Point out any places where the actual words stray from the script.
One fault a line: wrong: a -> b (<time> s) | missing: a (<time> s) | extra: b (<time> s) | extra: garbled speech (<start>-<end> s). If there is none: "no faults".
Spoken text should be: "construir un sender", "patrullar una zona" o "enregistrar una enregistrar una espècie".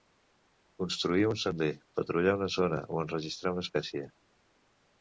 missing: enregistrar una (3.7 s)